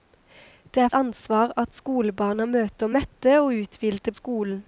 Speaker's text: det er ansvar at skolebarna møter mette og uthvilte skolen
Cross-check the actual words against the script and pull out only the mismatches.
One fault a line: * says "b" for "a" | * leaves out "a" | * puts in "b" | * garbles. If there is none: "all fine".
all fine